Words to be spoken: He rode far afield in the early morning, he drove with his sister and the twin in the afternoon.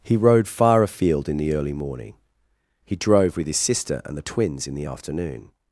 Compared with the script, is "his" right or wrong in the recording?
right